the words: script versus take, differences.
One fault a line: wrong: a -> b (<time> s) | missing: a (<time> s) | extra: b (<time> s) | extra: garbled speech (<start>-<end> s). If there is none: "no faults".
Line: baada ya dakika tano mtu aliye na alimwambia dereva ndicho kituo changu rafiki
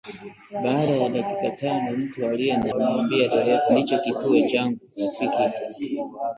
no faults